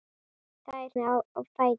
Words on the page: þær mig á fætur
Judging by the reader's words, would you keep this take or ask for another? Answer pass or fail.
pass